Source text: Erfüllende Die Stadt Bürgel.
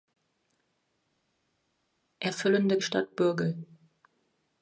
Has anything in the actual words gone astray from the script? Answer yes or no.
no